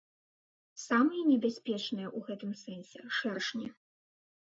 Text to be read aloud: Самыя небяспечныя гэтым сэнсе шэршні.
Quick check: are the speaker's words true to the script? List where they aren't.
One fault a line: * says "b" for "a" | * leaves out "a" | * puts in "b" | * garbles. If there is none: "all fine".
* puts in "ў"